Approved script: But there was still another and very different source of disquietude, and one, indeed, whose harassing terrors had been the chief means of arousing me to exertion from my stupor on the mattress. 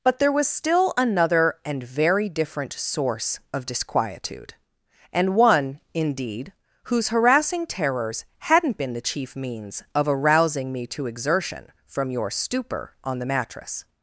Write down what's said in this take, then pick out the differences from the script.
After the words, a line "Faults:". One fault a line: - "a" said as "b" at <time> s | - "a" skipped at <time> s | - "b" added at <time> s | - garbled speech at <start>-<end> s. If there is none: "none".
But there was still another and very different source of disquietude, and one, indeed, whose harassing terrors hadn't been the chief means of arousing me to exertion from your stupor on the mattress.
Faults:
- "had" said as "hadn't" at 8.4 s
- "my" said as "your" at 12.1 s